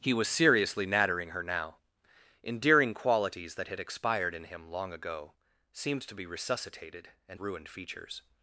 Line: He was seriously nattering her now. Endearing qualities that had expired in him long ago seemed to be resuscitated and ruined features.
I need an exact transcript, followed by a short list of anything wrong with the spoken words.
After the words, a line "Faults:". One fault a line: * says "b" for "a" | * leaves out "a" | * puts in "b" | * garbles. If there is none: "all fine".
He was seriously nattering her now. Endearing qualities that had expired in him long ago seemed to be resuscitated and ruined features.
Faults:
all fine